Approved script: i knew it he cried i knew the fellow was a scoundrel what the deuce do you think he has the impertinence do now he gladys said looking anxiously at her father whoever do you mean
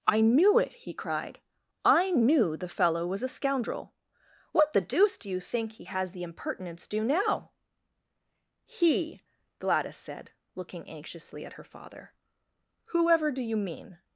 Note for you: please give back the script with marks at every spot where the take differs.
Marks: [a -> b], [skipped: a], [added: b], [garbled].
i knew it he cried i knew the fellow was a scoundrel what the deuce do you think he has the impertinence do now he gladys said looking anxiously at her father whoever do you mean